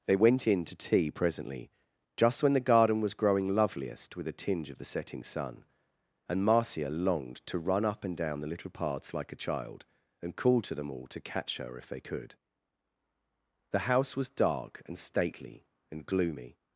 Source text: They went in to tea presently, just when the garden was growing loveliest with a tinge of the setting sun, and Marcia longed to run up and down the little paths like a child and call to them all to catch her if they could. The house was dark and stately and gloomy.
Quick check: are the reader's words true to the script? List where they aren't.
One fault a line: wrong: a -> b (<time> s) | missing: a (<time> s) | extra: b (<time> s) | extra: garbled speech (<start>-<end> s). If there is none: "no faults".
no faults